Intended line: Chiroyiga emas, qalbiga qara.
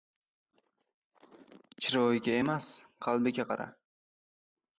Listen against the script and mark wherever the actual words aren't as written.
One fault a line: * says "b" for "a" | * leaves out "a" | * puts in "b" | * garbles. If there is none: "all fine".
all fine